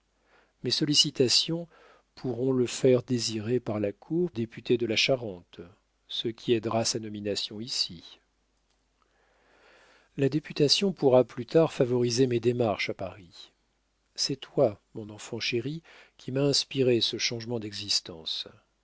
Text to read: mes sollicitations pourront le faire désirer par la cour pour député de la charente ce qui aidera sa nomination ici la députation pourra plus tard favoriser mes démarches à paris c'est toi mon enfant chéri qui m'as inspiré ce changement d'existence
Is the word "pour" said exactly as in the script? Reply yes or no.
no